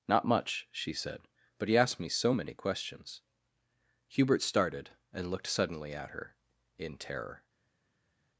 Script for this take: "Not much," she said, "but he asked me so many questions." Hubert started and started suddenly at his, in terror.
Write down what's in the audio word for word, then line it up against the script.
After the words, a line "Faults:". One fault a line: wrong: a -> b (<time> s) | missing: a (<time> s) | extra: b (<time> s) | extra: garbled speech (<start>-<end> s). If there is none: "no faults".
"Not much," she said, "but he asked me so many questions." Hubert started and looked suddenly at her, in terror.
Faults:
wrong: started -> looked (5.3 s)
wrong: his -> her (6.1 s)